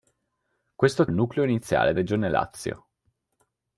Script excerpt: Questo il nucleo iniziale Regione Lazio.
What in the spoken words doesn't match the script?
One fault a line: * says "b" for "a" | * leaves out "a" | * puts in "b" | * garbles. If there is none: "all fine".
all fine